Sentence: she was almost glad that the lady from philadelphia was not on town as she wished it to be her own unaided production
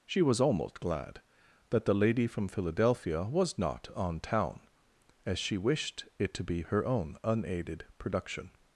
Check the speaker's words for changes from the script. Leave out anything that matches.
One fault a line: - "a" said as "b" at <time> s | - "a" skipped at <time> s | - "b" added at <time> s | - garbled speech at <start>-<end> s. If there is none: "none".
none